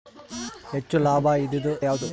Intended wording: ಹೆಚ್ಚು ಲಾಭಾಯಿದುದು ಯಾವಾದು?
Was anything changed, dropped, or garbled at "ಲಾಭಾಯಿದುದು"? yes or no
no